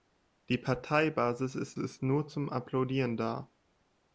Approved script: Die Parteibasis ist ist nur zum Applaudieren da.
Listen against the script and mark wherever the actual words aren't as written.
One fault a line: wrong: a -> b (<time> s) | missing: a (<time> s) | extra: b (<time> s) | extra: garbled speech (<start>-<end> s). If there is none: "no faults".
no faults